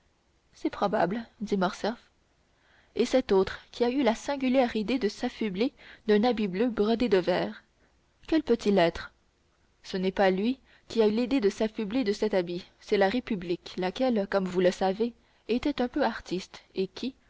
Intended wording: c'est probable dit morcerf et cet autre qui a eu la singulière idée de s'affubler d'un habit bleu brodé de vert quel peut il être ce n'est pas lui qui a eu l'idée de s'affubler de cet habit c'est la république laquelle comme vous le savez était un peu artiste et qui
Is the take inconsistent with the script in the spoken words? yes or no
yes